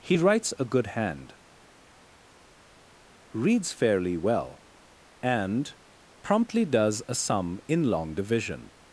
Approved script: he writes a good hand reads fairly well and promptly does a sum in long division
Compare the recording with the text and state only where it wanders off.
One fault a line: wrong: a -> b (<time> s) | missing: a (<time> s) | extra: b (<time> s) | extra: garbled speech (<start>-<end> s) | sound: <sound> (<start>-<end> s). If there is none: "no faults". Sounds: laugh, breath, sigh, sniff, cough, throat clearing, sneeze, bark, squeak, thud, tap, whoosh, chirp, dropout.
no faults